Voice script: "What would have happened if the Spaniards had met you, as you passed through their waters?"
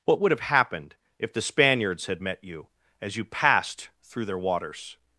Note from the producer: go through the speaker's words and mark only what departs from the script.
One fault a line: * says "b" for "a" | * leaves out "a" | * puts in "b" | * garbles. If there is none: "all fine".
all fine